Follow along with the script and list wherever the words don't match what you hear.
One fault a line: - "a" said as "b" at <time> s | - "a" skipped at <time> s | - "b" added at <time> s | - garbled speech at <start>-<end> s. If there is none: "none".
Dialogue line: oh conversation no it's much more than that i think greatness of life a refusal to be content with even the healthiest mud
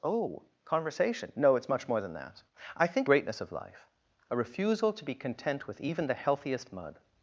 none